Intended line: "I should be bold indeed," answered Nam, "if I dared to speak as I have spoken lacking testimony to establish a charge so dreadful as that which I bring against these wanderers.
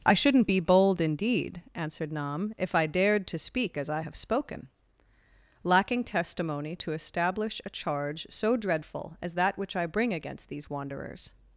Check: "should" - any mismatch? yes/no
yes